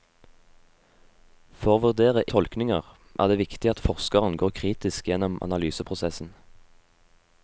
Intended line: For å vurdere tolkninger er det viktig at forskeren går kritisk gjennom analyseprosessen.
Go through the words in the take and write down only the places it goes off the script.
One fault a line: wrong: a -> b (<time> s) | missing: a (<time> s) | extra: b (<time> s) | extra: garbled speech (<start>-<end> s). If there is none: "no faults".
no faults